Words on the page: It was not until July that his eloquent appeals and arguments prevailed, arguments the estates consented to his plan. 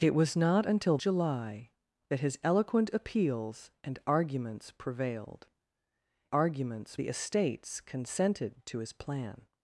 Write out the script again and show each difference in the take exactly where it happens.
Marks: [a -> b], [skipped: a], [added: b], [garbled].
It was not until July that his eloquent appeals and arguments prevailed, arguments the estates consented to his plan.